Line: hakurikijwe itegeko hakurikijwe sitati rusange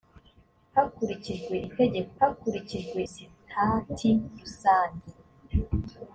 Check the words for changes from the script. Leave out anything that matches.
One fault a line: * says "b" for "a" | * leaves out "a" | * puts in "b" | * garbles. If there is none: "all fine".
all fine